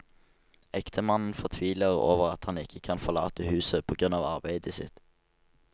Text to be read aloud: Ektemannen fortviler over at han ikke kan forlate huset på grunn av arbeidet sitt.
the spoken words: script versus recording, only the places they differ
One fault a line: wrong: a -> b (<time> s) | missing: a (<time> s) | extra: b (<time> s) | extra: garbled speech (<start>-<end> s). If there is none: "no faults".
no faults